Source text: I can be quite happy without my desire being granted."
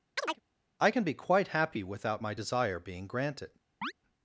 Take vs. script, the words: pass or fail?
pass